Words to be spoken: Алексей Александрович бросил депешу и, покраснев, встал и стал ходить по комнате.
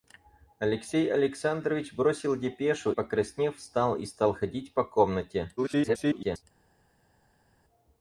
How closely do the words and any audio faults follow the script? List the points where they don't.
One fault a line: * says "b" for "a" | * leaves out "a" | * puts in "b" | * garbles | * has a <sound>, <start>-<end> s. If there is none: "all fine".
* leaves out "и"
* garbles